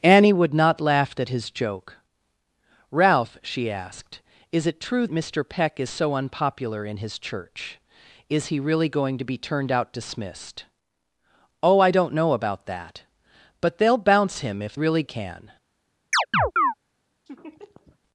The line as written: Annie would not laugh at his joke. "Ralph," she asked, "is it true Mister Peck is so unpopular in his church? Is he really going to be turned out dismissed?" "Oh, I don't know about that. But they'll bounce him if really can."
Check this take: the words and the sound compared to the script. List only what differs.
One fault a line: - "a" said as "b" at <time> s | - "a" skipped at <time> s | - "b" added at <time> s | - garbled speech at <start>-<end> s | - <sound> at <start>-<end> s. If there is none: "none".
- chirp at 16.1-16.7 s
- laugh at 17.3-18.0 s